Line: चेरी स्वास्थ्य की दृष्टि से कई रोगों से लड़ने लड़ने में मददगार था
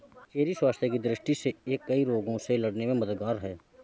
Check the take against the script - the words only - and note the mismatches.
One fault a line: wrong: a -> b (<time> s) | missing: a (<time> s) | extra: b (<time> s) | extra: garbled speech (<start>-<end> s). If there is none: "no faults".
extra: यह (1.7 s)
missing: लड़ने (2.9 s)
wrong: था -> है (3.4 s)